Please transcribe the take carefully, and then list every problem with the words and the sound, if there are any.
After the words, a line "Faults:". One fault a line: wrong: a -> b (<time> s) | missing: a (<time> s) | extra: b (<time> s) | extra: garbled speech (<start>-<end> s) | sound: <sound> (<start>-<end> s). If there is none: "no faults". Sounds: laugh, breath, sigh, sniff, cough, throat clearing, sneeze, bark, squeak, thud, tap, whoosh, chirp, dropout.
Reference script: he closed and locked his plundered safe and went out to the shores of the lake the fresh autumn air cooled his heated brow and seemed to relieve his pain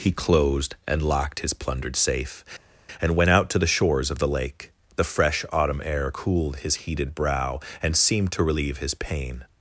he closed and locked his plundered safe and went out to the shores of the lake the fresh autumn air cooled his heated brow and seemed to relieve his pain
Faults:
no faults